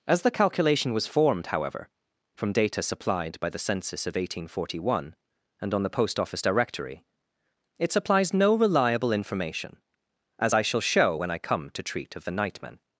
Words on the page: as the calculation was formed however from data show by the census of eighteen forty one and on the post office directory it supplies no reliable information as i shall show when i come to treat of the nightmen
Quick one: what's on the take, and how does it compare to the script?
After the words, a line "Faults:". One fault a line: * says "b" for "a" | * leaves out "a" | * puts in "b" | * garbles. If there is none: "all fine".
as the calculation was formed however from data supplied by the census of eighteen forty one and on the post office directory it supplies no reliable information as i shall show when i come to treat of the nightmen
Faults:
* says "supplied" for "show"